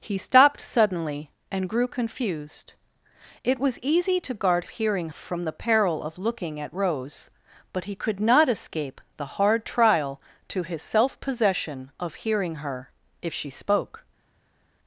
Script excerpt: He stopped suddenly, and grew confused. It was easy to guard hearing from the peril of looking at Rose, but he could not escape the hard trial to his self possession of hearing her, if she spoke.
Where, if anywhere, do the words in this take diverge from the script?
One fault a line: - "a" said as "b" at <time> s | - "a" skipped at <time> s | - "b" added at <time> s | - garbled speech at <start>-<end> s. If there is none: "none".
none